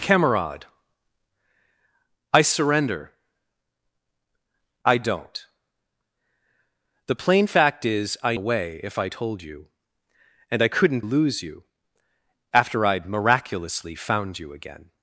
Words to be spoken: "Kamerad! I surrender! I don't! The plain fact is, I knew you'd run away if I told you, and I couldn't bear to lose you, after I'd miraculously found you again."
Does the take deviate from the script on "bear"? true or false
true